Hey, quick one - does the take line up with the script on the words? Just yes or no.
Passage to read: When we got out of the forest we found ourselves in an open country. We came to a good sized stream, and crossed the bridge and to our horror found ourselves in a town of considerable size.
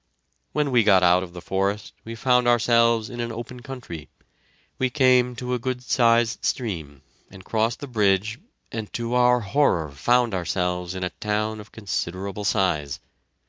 yes